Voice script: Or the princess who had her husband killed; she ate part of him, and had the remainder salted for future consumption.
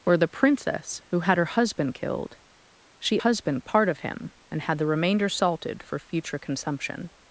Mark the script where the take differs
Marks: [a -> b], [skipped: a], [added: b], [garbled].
Or the princess who had her husband killed; she [ate -> husband] part of him, and had the remainder salted for future consumption.